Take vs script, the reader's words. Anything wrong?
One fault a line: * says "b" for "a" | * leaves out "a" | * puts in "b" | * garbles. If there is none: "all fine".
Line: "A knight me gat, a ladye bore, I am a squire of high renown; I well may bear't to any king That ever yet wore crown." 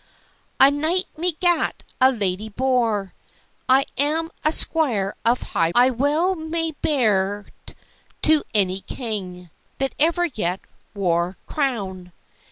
* leaves out "renown"